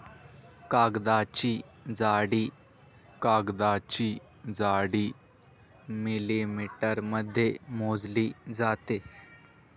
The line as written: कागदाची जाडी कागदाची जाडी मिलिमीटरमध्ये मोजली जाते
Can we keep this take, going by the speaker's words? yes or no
yes